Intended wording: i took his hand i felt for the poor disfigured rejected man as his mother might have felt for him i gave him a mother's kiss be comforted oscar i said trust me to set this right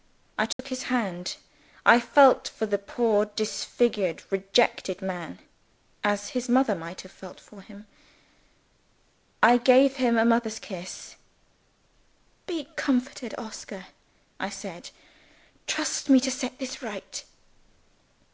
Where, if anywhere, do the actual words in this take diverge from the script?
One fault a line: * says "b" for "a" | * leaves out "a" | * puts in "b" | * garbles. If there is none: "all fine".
all fine